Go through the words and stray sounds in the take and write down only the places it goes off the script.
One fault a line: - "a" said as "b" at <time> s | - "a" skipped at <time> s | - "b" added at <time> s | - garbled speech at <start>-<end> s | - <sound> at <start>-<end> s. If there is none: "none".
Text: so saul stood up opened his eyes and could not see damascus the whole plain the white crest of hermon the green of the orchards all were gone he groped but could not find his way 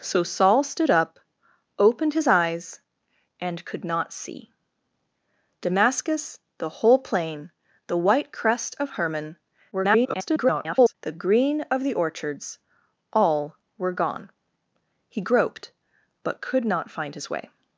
- garbled speech at 9.7-10.9 s